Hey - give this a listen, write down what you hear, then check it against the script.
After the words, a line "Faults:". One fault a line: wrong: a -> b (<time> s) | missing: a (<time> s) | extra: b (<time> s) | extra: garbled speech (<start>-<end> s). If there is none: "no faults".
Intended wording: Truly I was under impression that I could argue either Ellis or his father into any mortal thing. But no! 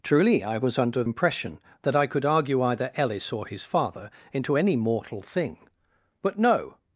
Truly I was under impression that I could argue either Ellis or his father into any mortal thing. But no!
Faults:
no faults